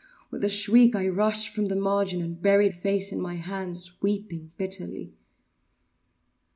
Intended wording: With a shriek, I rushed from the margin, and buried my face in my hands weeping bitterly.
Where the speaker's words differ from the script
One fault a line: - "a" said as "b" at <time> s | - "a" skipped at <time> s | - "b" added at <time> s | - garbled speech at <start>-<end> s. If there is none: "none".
- "my" skipped at 2.7 s